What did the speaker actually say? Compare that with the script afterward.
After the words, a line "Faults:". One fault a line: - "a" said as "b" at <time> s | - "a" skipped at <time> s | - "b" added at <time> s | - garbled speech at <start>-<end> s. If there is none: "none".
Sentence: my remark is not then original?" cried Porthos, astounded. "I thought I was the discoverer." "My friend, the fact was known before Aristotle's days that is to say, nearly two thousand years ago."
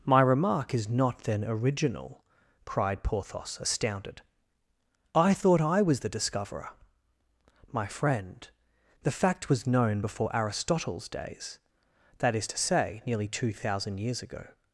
my remark is not then original?" cried Porthos, astounded. "I thought I was the discoverer." "My friend, the fact was known before Aristotle's days that is to say, nearly two thousand years ago."
Faults:
none